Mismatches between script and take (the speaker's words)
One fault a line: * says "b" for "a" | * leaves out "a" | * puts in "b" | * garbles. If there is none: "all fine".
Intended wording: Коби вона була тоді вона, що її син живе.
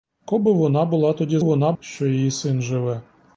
all fine